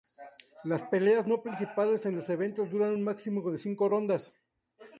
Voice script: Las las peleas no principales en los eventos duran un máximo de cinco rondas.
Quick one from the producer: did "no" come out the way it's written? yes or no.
yes